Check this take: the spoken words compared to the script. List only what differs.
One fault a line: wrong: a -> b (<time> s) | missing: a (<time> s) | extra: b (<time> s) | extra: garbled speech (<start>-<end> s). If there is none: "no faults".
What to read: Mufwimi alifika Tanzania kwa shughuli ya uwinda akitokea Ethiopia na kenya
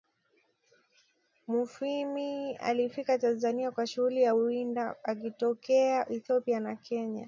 no faults